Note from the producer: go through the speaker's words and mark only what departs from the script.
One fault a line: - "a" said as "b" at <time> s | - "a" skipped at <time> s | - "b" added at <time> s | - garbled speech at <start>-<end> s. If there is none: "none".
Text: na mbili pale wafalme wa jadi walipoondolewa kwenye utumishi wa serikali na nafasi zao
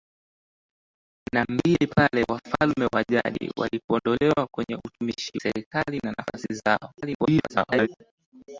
- "wa" skipped at 5.4 s
- garbled speech at 7.0-7.9 s